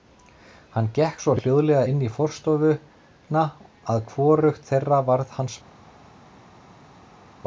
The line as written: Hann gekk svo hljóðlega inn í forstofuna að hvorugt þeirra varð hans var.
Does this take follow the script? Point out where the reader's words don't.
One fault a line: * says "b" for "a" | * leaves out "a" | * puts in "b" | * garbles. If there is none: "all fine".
all fine